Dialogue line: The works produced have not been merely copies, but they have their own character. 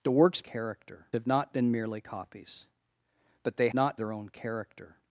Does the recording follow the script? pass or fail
fail